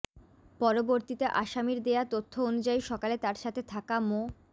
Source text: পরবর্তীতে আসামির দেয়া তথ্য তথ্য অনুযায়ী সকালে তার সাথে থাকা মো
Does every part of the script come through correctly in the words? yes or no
no